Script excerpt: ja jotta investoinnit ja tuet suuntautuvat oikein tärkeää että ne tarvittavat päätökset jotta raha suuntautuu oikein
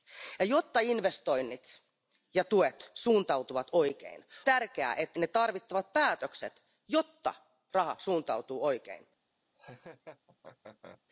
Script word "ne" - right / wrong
right